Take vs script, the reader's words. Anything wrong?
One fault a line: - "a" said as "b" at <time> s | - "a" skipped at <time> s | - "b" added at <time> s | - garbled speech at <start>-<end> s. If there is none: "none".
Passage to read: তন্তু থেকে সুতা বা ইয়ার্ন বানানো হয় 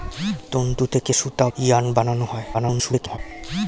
- "বা" skipped at 1.5 s
- garbled speech at 2.5-3.2 s